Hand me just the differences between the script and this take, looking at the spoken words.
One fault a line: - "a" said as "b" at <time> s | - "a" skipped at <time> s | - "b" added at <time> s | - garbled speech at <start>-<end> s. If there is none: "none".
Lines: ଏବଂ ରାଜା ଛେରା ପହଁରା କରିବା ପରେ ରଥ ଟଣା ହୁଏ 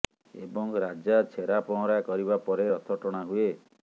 none